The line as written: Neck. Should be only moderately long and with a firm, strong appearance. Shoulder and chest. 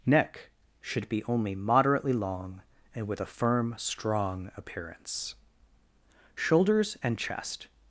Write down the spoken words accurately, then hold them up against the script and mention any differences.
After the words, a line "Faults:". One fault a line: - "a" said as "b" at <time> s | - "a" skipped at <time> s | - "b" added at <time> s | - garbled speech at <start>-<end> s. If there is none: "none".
Neck. Should be only moderately long and with a firm, strong appearance. Shoulders and chest.
Faults:
- "Shoulder" said as "Shoulders" at 6.3 s